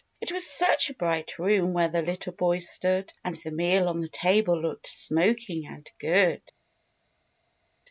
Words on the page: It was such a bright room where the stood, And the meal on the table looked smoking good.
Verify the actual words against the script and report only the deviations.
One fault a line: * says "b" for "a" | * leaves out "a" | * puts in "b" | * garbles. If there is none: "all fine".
* puts in "little boy"
* puts in "and"